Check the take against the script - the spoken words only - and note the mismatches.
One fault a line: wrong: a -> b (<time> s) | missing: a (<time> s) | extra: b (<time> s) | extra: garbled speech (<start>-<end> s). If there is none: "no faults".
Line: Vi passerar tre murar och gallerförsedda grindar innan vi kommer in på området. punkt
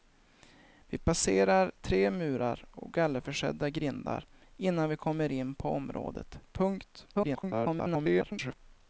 extra: garbled speech (7.1-8.6 s)